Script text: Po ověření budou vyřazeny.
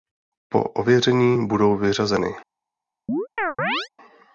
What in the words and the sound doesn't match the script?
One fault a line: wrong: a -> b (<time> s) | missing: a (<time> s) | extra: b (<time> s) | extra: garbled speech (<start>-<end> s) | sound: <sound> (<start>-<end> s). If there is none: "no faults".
sound: chirp (3.1-3.9 s)